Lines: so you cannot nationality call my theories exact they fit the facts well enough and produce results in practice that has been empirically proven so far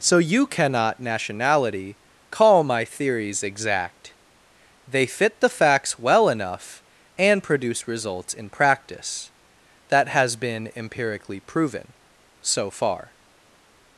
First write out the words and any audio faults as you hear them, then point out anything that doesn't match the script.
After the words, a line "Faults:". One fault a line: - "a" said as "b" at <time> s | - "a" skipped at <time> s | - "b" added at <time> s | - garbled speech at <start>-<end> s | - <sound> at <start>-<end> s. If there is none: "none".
so you cannot nationality call my theories exact they fit the facts well enough and produce results in practice that has been empirically proven so far
Faults:
none